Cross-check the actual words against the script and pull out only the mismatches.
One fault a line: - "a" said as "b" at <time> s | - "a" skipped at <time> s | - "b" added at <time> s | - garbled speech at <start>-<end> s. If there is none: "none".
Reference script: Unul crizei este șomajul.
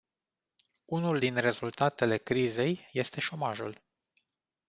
- "din rezultatele" added at 1.2 s